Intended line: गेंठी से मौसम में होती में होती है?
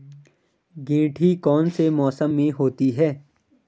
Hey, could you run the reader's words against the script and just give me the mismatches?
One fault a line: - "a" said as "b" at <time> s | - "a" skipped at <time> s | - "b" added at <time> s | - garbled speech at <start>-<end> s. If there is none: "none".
- "कौन" added at 1.4 s
- "में होती" skipped at 2.9 s